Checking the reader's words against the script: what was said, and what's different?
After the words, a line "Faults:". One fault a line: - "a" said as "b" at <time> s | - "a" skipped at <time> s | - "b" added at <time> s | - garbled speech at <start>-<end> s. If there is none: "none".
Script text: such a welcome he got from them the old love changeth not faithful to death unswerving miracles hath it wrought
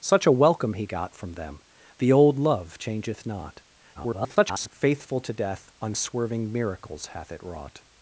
such a welcome he got from them the old love changeth not [garbled] faithful to death unswerving miracles hath it wrought
Faults:
- garbled speech at 3.9-4.7 s